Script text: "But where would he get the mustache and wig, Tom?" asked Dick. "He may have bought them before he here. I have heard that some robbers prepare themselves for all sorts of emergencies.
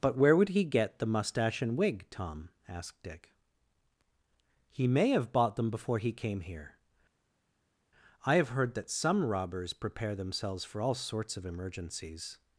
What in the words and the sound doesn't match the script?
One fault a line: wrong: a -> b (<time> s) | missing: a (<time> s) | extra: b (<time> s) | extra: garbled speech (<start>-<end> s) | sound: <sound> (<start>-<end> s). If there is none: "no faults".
extra: came (6.1 s)